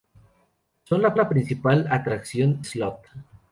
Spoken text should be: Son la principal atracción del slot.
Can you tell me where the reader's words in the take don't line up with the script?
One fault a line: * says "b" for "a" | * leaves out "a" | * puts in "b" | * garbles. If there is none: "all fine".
* puts in "la"
* leaves out "del"